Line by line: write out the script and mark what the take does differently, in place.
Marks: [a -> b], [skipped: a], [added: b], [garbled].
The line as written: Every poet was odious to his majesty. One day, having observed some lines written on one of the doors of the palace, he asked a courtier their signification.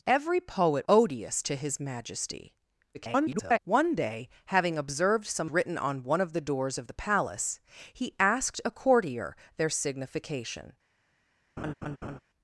Every poet [skipped: was] odious to his majesty. [garbled] One day, having observed some [skipped: lines] written on one of the doors of the palace, he asked a courtier their signification.